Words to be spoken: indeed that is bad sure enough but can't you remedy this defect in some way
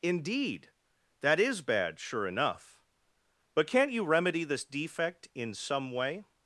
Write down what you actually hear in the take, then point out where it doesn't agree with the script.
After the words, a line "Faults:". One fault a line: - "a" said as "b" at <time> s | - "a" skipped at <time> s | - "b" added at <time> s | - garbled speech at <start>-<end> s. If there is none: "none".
indeed that is bad sure enough but can't you remedy this defect in some way
Faults:
none